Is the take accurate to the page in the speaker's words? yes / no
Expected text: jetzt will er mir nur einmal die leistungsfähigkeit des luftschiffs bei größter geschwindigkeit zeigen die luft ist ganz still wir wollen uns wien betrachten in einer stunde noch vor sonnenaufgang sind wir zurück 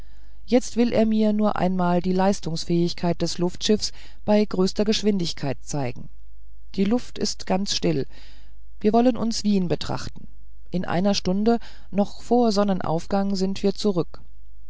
yes